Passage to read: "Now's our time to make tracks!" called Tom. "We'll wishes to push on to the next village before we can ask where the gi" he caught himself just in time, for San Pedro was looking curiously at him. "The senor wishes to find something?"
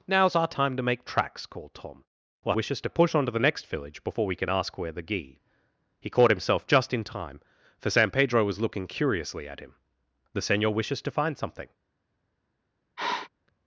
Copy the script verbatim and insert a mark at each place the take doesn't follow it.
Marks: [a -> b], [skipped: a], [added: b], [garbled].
"Now's our time to make tracks!" called Tom. "We'll wishes to push on to the next village before we can ask where the gi" he caught himself just in time, for San Pedro was looking curiously at him. "The senor wishes to find something?"